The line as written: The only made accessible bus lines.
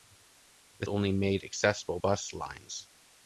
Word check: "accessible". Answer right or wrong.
right